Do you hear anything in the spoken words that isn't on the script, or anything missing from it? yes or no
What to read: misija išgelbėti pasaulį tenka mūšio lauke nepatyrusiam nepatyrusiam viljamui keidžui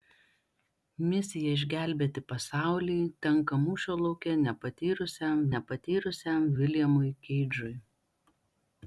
no